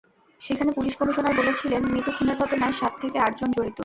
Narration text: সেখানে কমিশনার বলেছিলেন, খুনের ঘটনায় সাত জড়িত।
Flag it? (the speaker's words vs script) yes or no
yes